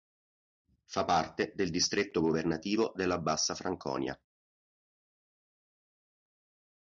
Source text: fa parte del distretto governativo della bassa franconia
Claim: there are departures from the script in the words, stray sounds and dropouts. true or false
false